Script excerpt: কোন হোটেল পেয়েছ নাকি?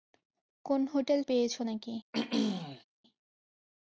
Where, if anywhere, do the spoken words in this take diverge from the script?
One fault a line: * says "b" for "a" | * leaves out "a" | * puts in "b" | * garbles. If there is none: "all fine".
all fine